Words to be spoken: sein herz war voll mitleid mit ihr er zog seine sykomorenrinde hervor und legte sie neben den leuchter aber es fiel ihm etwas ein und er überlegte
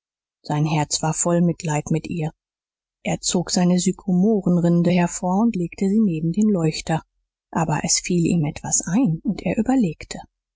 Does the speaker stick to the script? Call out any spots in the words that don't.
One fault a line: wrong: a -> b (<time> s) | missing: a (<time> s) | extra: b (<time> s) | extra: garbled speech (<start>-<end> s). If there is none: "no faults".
no faults